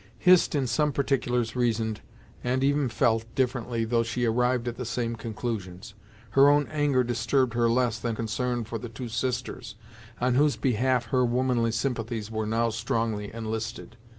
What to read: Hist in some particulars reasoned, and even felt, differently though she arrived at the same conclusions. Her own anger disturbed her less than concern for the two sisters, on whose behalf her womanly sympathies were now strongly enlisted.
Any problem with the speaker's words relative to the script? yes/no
no